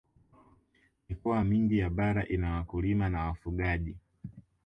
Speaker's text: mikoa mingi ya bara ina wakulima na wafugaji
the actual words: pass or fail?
pass